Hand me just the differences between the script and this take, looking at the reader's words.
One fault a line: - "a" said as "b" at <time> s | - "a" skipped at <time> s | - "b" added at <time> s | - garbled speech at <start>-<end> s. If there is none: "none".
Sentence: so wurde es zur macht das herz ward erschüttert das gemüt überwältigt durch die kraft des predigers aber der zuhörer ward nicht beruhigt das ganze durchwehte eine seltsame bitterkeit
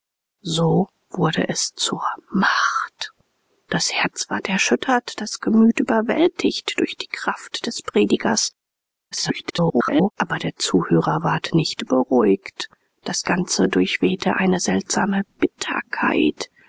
- garbled speech at 9.1-10.1 s